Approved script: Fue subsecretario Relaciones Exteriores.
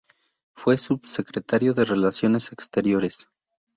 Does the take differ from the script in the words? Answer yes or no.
yes